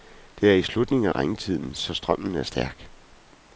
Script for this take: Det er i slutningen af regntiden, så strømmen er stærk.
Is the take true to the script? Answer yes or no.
yes